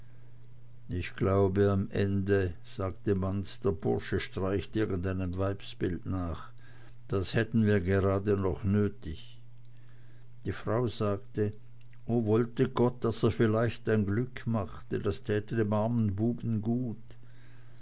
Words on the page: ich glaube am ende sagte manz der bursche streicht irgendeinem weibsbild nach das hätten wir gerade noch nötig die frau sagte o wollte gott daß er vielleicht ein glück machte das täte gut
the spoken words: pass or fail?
fail